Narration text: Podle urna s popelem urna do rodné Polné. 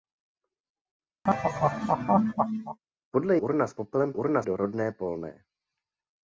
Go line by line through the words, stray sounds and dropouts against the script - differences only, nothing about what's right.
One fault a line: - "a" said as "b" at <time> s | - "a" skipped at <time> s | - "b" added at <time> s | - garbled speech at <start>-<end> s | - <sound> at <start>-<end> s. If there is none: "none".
- laugh at 1.2-2.8 s